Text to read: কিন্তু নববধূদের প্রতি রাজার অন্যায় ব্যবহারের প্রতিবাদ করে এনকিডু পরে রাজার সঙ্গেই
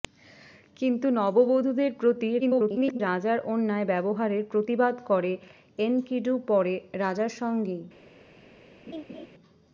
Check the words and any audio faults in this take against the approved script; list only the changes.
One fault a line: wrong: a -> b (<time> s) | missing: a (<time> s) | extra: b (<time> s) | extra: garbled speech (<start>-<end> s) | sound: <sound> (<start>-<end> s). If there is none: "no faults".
extra: garbled speech (2.4-3.0 s)
sound: laugh (8.9-9.3 s)